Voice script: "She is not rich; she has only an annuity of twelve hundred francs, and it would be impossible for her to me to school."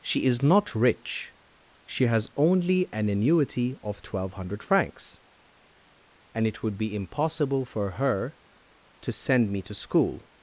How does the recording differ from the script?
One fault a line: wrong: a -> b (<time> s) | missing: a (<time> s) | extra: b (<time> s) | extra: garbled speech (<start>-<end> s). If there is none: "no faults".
extra: send (9.1 s)